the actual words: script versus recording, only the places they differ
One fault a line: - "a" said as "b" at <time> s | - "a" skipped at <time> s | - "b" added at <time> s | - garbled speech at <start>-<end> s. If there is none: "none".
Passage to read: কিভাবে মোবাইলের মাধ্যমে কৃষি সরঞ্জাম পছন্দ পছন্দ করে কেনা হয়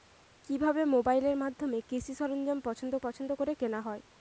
none